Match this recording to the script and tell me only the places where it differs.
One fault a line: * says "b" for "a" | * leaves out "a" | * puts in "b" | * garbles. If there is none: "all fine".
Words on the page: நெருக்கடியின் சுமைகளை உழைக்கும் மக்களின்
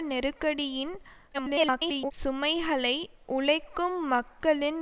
* garbles